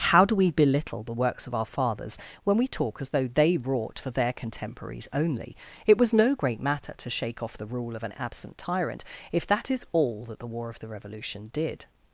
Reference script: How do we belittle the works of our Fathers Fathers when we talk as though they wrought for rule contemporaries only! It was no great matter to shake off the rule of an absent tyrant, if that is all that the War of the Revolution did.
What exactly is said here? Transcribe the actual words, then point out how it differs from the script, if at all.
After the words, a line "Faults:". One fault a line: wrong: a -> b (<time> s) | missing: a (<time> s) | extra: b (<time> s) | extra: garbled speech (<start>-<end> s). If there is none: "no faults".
How do we belittle the works of our Fathers when we talk as though they wrought for their contemporaries only! It was no great matter to shake off the rule of an absent tyrant, if that is all that the War of the Revolution did.
Faults:
missing: Fathers (2.2 s)
wrong: rule -> their (4.1 s)